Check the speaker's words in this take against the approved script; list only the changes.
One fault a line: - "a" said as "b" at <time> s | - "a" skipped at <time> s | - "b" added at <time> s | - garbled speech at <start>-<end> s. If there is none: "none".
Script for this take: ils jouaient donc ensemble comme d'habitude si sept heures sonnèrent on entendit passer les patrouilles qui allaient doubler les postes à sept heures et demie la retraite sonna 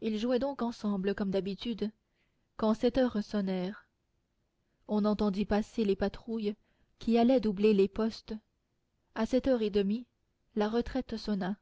- "si" said as "quand" at 2.6 s